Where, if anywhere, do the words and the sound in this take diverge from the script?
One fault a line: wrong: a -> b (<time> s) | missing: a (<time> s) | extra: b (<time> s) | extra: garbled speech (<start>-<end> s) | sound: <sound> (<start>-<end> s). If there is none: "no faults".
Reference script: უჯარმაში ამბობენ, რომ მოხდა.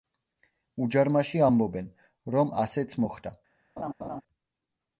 extra: ასეც (2.6 s)
sound: laugh (3.8-4.2 s)